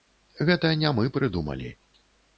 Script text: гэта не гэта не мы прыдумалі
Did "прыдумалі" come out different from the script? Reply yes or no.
no